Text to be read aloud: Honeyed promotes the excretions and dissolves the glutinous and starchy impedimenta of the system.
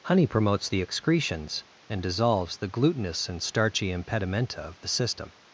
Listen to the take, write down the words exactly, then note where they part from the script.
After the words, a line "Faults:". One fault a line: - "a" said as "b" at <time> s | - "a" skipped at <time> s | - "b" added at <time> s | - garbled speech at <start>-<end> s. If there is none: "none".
Honey promotes the excretions and dissolves the glutinous and starchy impedimenta of the system.
Faults:
- "Honeyed" said as "Honey" at 0.1 s